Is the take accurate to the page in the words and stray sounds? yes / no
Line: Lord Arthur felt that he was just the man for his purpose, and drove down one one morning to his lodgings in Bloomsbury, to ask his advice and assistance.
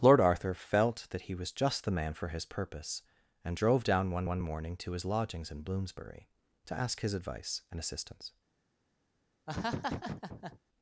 no